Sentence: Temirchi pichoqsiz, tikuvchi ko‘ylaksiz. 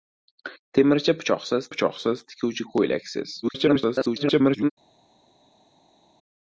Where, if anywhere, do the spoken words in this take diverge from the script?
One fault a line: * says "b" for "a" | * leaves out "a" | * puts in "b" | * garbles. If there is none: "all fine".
* puts in "pichoqsiz"
* garbles